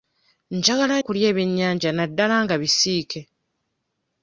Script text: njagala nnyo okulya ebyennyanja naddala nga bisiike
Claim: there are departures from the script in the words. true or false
true